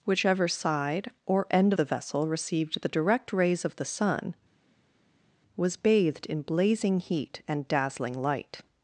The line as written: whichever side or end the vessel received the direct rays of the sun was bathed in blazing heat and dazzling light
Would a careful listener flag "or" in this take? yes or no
no